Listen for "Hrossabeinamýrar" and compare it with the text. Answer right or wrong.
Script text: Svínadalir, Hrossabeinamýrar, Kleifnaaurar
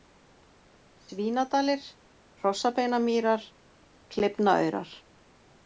right